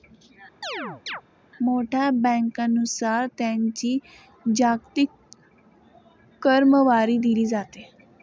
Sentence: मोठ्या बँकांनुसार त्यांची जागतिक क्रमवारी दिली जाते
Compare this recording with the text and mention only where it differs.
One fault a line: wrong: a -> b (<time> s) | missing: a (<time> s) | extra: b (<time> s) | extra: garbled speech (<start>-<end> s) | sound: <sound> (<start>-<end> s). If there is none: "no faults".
sound: chirp (0.6-1.2 s)